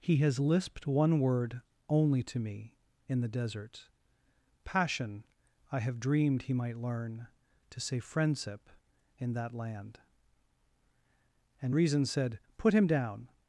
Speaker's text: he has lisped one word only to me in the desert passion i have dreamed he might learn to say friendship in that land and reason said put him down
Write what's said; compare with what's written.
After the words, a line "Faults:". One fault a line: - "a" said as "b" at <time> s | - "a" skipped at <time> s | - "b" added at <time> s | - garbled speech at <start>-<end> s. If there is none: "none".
he has lisped one word only to me in the desert passion i have dreamed he might learn to say friendship in that land and reason said put him down
Faults:
none